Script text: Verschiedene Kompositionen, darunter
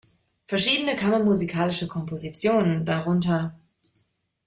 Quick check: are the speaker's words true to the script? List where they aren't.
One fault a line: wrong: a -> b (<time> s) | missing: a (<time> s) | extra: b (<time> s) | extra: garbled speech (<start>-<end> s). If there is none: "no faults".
extra: kammermusikalische (0.9 s)